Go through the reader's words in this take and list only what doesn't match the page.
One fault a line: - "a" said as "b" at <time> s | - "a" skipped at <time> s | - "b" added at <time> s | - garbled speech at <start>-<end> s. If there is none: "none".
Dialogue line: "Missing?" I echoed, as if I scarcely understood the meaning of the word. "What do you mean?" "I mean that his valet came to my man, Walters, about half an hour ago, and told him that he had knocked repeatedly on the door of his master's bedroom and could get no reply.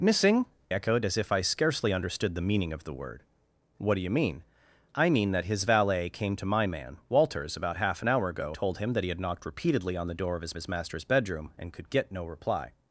- "I" skipped at 0.5 s
- "and" skipped at 8.5 s
- "his" added at 10.6 s